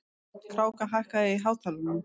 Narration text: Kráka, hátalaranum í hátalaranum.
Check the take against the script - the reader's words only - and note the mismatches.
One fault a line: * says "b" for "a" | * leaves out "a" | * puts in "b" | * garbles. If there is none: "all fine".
* says "hækkaðu" for "hátalaranum"